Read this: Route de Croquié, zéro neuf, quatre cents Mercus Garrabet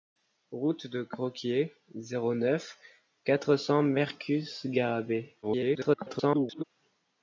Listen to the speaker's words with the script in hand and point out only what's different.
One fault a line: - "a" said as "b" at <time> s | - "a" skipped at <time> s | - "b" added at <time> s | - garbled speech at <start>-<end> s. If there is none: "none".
- garbled speech at 5.4-6.6 s